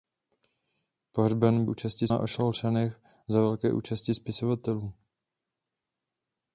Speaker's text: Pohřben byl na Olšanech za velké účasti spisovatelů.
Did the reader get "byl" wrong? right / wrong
wrong